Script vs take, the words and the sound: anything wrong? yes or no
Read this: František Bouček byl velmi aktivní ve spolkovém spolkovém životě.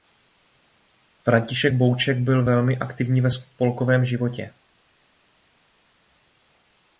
yes